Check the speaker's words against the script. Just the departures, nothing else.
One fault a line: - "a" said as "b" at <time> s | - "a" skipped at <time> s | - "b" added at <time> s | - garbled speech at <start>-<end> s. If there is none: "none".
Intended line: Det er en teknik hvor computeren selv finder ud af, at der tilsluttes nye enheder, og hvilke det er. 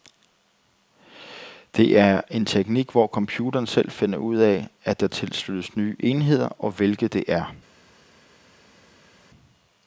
none